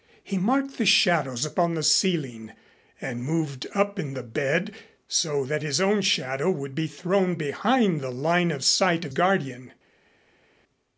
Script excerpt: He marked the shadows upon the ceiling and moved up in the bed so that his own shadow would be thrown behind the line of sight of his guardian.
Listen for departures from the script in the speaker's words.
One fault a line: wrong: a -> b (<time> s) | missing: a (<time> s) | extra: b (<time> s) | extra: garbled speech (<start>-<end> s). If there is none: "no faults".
missing: his (9.1 s)